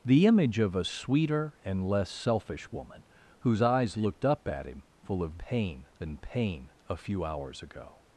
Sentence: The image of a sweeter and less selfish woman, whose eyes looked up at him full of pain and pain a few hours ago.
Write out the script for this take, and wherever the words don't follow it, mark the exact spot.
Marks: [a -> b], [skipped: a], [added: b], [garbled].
The image of a sweeter and less selfish woman, whose eyes looked up at him full of pain and pain a few hours ago.